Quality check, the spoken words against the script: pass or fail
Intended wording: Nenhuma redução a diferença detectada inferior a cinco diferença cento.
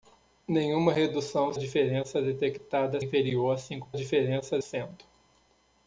pass